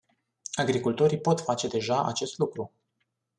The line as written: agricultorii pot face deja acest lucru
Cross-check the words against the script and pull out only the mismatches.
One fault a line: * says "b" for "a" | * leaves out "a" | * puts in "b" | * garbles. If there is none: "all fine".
all fine